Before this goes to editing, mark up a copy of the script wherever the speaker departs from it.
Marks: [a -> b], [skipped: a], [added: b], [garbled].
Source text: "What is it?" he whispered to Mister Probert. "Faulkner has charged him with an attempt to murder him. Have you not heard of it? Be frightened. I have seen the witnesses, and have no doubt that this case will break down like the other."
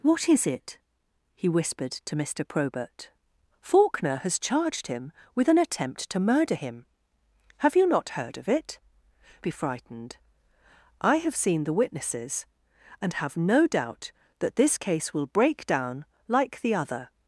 "What is it?" he whispered to Mister Probert. "Faulkner has charged him with an attempt to murder him. Have you not heard of it? Be frightened. I have seen the witnesses, and have no doubt that this case will break down like the other."